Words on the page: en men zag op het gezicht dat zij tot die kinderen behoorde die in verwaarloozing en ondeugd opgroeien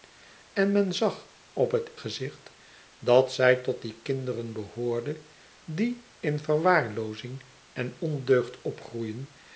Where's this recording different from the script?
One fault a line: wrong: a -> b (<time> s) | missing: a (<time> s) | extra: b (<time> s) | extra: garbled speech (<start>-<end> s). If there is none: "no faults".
no faults